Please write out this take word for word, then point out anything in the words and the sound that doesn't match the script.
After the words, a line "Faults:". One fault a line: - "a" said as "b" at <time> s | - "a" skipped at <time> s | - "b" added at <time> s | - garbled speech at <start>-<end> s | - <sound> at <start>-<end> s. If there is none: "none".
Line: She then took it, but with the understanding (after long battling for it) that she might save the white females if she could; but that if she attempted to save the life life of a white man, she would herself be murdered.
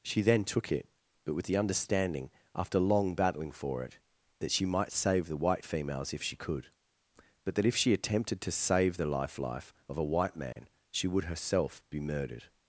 She then took it, but with the understanding (after long battling for it) that she might save the white females if she could; but that if she attempted to save the life life of a white man, she would herself be murdered.
Faults:
- dropout at 10.5-10.6 s